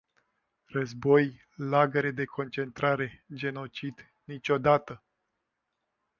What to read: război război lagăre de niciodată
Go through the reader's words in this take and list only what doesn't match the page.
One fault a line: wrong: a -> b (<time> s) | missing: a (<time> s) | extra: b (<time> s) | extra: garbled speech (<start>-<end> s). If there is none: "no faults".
missing: război (1.5 s)
extra: concentrare genocid (2.2 s)